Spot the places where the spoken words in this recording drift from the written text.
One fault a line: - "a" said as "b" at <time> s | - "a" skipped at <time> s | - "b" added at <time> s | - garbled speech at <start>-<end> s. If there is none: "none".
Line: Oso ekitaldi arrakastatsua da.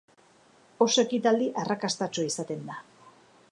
- "izaten" added at 2.3 s